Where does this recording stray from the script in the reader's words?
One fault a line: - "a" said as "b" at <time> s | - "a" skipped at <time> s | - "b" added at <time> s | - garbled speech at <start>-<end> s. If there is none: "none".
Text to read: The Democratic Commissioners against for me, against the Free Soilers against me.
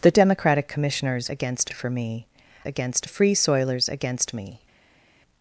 none